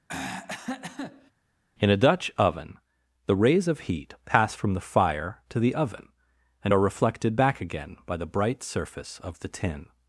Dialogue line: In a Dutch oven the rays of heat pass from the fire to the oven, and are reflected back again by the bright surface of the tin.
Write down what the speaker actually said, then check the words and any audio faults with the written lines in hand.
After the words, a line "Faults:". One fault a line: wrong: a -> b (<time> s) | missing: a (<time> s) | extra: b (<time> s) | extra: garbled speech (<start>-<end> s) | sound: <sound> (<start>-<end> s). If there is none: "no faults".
In a Dutch oven the rays of heat pass from the fire to the oven, and are reflected back again by the bright surface of the tin.
Faults:
sound: throat clearing (0.1-1.3 s)